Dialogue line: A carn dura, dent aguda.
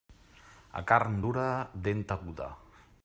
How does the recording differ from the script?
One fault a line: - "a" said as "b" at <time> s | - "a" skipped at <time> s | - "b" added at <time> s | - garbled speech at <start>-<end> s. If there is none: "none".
none